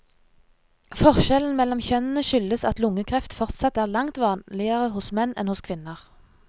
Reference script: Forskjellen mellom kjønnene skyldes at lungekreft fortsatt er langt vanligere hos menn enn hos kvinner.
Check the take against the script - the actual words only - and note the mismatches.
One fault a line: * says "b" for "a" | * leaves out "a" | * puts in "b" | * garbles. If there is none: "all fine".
all fine